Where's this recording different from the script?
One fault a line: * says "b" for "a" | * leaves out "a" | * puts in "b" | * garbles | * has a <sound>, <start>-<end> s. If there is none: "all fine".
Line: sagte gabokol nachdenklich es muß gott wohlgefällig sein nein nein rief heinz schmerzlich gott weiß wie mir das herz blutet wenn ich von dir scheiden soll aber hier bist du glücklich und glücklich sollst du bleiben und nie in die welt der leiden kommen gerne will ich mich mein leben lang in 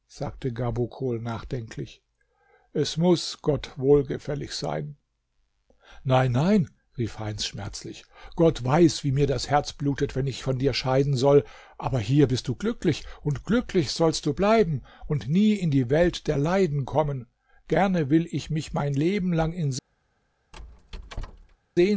* has a squeak, 20.5-21.6 s